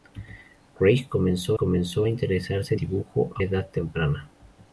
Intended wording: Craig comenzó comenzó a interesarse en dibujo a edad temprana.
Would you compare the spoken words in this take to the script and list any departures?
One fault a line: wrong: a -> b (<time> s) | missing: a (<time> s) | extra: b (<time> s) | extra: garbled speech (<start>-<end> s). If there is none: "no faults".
no faults